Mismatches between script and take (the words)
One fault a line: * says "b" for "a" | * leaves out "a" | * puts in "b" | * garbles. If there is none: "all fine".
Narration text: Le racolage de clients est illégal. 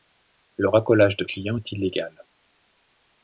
all fine